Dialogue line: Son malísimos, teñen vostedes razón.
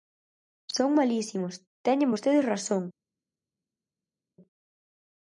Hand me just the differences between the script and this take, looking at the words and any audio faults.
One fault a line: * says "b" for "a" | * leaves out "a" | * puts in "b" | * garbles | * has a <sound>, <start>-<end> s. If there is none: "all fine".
all fine